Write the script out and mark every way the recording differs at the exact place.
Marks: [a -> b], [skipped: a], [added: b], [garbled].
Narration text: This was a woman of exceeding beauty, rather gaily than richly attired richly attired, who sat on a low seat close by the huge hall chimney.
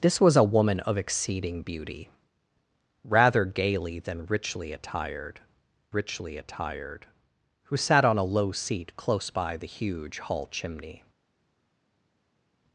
This was a woman of exceeding beauty, rather gaily than richly attired richly attired, who sat on a low seat close by the huge hall chimney.